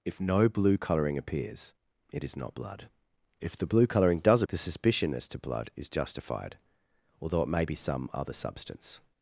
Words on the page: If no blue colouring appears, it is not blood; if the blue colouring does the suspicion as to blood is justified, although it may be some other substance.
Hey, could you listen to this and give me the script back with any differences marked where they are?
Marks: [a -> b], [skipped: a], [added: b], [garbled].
If no blue colouring appears, it is not blood; if the blue colouring does the suspicion as to blood is justified, although it may be some other substance.